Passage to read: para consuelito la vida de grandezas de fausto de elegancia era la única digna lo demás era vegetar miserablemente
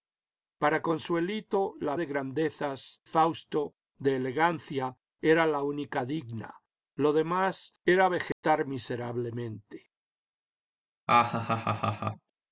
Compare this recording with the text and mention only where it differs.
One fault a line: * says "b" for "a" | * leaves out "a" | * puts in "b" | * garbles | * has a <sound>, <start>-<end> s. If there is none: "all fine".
* leaves out "vida"
* leaves out "de"
* has a dropout, 8.3-8.4 s
* has a laugh, 11.1-12.3 s